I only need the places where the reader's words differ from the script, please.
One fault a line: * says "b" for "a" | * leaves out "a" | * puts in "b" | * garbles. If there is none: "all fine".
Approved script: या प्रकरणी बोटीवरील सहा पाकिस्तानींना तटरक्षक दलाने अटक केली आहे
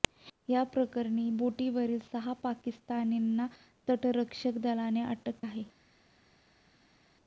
* leaves out "केली"